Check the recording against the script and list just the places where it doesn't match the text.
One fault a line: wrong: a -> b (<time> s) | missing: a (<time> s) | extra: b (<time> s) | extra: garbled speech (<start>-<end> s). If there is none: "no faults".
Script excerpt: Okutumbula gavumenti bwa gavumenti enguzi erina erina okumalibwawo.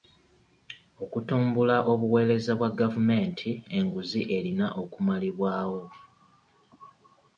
wrong: gavumenti -> obuweereza (1.9 s)
missing: erina (4.7 s)